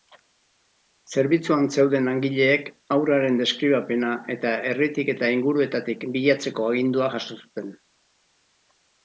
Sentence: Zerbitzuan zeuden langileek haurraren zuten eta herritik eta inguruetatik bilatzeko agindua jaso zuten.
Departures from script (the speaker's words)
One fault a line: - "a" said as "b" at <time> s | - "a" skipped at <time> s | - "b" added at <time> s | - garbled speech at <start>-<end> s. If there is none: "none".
- "zuten" said as "deskribapena" at 3.4 s